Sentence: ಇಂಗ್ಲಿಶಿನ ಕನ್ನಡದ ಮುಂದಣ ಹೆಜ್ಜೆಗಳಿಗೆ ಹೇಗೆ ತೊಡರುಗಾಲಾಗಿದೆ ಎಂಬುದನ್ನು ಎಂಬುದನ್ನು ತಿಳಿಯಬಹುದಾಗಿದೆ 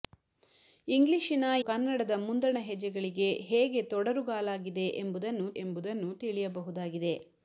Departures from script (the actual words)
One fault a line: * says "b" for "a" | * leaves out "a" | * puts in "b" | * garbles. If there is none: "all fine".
all fine